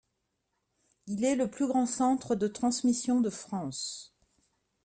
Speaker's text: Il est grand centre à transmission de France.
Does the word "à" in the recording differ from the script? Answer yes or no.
yes